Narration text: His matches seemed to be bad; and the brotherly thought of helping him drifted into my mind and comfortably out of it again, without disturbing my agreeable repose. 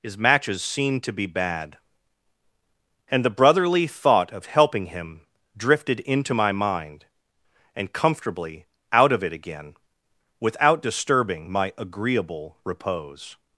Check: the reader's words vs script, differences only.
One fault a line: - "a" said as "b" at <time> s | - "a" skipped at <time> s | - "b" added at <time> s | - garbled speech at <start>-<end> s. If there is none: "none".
none